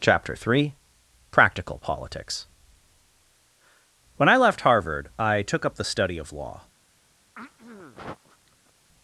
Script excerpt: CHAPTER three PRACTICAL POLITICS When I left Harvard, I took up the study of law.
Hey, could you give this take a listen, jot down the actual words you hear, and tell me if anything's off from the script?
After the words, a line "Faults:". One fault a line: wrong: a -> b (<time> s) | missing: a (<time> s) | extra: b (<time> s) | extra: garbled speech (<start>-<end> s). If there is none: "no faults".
CHAPTER three PRACTICAL POLITICS When I left Harvard, I took up the study of law.
Faults:
no faults